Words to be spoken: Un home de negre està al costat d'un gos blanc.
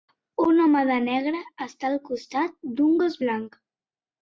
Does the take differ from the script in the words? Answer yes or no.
no